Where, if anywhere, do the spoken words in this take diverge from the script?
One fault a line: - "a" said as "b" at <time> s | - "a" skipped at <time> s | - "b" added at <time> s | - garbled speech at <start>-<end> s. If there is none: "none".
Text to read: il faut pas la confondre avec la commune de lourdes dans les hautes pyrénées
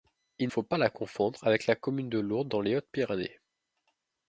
none